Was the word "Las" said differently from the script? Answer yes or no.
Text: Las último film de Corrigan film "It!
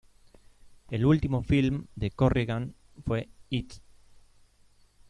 yes